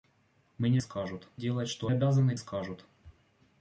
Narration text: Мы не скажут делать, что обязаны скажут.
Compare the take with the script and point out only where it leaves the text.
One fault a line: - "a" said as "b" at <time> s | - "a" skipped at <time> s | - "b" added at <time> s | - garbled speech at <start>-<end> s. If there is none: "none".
none